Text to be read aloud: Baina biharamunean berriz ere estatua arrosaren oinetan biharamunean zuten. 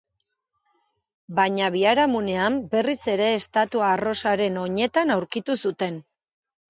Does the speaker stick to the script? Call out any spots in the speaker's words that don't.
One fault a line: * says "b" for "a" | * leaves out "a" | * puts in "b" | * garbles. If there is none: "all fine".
* says "aurkitu" for "biharamunean"